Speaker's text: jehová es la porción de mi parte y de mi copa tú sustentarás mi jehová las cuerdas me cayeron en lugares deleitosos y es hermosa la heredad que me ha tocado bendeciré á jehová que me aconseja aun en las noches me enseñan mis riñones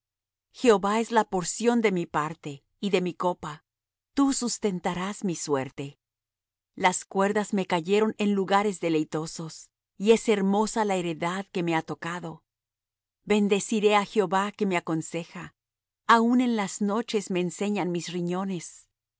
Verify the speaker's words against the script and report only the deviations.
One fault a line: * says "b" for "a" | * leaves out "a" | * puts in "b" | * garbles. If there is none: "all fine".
* says "suerte" for "jehová"